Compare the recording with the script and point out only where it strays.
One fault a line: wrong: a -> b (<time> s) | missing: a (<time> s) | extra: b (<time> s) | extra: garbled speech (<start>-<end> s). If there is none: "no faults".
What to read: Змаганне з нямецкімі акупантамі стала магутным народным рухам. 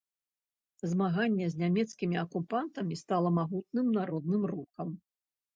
no faults